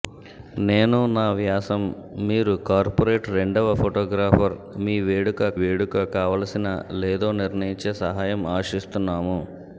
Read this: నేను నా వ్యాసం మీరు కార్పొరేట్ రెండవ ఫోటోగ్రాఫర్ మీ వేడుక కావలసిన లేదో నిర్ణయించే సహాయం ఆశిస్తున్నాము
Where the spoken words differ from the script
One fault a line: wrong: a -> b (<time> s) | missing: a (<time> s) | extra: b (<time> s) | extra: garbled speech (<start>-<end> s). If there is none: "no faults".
extra: వేడుక (5.6 s)